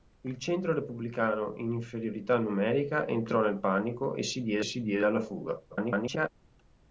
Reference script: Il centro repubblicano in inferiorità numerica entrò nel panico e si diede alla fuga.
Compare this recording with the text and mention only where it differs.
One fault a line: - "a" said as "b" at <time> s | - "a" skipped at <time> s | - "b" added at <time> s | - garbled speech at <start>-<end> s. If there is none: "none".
- "si diede" added at 4.6 s
- garbled speech at 5.7-6.3 s